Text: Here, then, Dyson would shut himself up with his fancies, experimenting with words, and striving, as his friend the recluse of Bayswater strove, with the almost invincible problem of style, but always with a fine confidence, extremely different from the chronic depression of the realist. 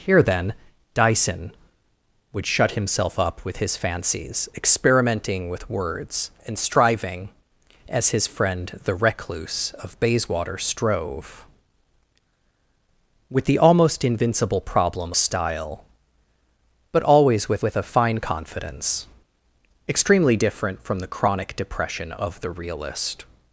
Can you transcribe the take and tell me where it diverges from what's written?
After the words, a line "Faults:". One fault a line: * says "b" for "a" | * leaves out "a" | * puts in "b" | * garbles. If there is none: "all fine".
Here, then, Dyson would shut himself up with his fancies, experimenting with words, and striving, as his friend the recluse of Bayswater strove, with the almost invincible problem style, but always with with a fine confidence, extremely different from the chronic depression of the realist.
Faults:
* leaves out "of"
* puts in "with"